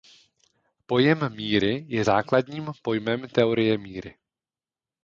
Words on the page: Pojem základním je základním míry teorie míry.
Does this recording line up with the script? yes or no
no